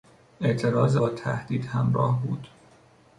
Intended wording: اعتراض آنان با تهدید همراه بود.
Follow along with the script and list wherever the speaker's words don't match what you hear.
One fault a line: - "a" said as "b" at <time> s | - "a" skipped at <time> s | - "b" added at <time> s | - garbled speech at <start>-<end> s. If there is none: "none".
- "آنان" skipped at 1.0 s